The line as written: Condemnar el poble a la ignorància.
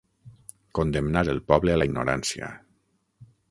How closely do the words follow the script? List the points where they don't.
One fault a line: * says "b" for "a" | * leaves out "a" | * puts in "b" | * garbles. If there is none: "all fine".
all fine